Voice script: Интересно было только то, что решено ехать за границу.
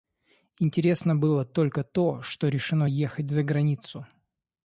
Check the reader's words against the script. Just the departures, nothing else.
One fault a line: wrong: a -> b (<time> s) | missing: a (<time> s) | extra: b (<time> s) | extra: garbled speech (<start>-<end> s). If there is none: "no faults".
no faults